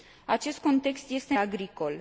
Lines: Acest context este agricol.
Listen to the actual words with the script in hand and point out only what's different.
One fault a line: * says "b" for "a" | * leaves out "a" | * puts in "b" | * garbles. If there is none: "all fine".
all fine